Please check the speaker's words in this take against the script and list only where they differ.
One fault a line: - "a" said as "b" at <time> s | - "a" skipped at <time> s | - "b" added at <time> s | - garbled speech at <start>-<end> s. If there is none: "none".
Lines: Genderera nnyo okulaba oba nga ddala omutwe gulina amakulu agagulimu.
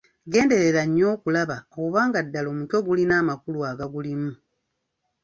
none